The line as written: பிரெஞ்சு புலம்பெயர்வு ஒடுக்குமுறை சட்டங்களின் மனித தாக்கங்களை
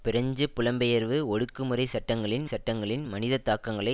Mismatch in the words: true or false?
true